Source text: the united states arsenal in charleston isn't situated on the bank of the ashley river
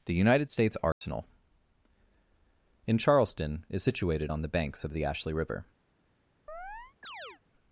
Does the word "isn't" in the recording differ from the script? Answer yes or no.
yes